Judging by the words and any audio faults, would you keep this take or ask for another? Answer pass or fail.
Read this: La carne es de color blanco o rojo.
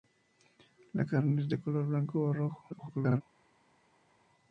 fail